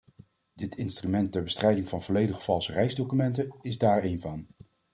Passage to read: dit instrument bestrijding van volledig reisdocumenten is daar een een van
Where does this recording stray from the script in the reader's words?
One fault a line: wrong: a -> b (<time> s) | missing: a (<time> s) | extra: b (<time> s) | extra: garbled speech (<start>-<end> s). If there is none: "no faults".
extra: ter (1.3 s)
extra: valse (2.4 s)
missing: een (4.2 s)